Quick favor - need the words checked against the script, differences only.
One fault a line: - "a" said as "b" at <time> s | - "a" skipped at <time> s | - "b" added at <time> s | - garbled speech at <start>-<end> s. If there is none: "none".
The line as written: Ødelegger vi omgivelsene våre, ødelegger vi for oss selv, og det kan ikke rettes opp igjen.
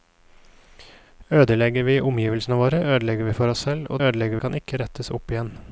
- "det" said as "ødelegger" at 4.1 s